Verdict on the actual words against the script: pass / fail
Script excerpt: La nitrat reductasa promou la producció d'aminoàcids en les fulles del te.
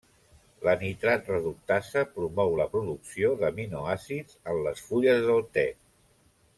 pass